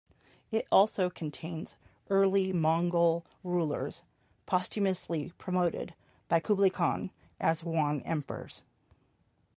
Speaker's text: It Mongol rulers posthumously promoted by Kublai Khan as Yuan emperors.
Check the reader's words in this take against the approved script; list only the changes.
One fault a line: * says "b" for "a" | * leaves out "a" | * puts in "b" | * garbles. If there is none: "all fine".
* puts in "also contains early"